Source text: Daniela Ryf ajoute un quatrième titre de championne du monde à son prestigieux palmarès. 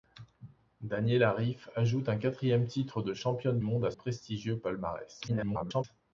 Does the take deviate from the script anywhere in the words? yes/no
yes